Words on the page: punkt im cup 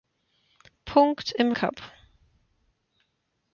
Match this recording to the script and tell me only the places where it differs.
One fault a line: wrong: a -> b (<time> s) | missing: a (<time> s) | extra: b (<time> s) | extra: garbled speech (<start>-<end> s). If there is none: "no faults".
no faults